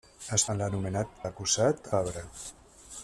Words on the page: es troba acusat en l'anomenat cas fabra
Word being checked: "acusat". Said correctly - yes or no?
no